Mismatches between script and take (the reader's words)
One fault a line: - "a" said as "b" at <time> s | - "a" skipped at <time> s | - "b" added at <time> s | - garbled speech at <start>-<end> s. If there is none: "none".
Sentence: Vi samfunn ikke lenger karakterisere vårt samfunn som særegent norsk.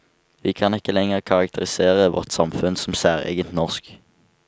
- "samfunn" said as "kan" at 0.5 s